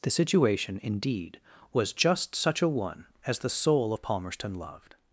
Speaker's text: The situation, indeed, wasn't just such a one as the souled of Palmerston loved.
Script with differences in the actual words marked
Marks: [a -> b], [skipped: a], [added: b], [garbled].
The situation, indeed, [wasn't -> was] just such a one as the [souled -> soul] of Palmerston loved.